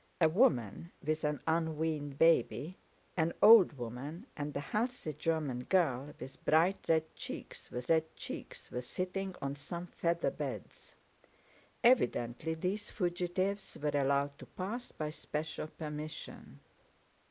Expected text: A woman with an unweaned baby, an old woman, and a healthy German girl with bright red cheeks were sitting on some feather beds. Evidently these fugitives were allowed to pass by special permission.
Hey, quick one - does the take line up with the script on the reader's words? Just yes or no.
no